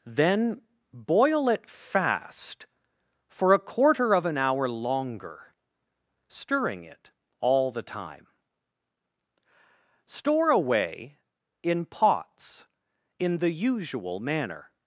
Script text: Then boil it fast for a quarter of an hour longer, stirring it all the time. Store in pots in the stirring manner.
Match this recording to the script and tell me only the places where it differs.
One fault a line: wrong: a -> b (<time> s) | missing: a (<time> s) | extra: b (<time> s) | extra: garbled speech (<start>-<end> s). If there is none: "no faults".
extra: away (10.5 s)
wrong: stirring -> usual (13.5 s)